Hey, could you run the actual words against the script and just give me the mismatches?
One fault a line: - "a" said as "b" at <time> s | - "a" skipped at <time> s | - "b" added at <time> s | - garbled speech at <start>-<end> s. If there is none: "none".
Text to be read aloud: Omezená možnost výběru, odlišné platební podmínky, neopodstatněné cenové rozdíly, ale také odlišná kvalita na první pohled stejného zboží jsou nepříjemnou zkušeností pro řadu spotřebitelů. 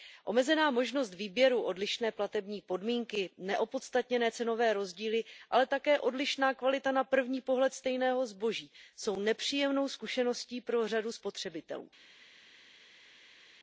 none